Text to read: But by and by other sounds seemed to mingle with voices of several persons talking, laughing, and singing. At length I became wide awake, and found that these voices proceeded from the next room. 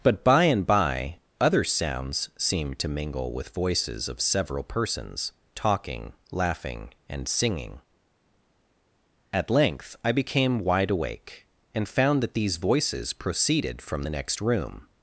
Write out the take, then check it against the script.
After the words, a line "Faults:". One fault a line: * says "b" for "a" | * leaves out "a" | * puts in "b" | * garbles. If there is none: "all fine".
But by and by other sounds seemed to mingle with voices of several persons talking, laughing, and singing. At length I became wide awake, and found that these voices proceeded from the next room.
Faults:
all fine